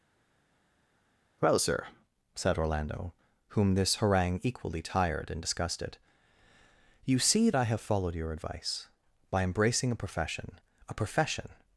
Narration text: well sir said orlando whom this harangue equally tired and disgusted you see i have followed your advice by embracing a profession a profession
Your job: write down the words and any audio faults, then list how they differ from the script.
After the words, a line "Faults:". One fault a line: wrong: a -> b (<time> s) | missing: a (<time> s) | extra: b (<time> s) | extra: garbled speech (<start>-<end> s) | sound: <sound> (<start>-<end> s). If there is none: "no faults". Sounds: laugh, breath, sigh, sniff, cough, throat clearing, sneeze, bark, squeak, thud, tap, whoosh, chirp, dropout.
well sir said orlando whom this harangue equally tired and disgusted you see i have followed your advice by embracing a profession a profession
Faults:
no faults